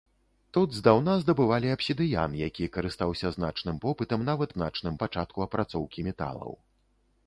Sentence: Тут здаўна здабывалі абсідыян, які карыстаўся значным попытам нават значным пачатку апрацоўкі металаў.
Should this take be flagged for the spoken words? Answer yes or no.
no